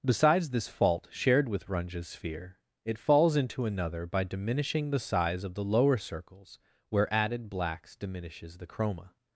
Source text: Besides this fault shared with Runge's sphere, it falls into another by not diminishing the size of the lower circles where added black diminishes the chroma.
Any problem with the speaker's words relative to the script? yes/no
yes